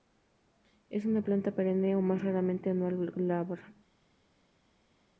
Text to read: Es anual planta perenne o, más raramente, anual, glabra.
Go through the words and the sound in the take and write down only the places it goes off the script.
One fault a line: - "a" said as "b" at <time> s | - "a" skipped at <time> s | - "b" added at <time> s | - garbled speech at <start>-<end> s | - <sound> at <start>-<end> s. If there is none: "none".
- "anual" said as "una" at 1.1 s